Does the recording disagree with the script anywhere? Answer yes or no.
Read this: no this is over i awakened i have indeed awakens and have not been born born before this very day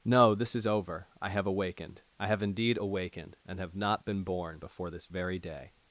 yes